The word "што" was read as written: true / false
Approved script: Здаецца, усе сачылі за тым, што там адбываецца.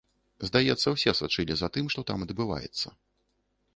true